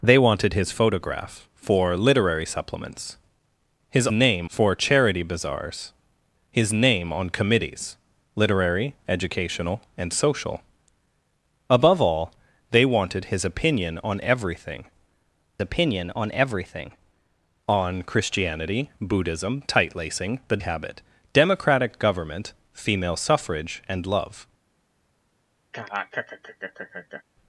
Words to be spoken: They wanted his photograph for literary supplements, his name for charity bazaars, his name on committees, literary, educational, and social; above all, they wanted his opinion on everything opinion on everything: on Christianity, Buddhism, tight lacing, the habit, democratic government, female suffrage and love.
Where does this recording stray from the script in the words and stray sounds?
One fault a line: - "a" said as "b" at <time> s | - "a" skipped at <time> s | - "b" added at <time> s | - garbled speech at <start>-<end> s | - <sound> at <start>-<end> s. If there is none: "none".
- laugh at 25.7-27.2 s